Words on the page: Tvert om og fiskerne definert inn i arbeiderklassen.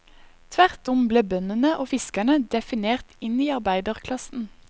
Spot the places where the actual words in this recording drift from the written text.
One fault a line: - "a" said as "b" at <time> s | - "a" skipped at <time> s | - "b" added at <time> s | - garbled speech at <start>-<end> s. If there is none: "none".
- "ble bøndene" added at 1.1 s